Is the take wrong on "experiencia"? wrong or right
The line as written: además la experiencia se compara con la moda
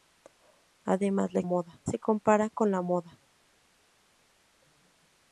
wrong